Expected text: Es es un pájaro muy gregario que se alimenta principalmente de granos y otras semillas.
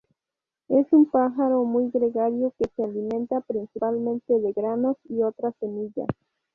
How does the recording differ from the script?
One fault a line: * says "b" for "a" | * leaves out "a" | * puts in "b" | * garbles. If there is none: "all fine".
* leaves out "es"